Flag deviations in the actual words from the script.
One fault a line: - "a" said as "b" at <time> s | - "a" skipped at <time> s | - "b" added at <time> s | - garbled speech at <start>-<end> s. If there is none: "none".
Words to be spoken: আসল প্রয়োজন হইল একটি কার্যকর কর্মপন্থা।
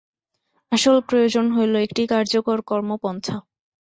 none